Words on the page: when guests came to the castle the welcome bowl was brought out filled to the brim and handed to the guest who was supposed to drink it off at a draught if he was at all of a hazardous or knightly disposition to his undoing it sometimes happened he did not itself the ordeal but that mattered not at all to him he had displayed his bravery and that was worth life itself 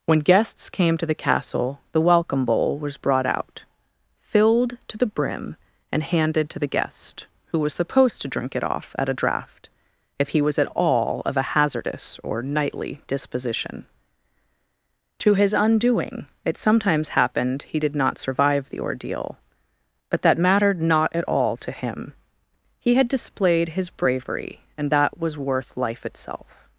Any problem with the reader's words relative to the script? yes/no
yes